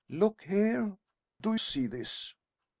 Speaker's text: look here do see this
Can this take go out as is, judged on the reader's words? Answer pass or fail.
pass